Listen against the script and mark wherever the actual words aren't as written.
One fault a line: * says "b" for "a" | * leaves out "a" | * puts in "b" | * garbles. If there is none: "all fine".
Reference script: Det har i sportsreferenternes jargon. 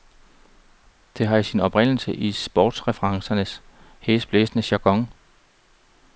* puts in "sin oprindelse"
* puts in "hæsblæsende"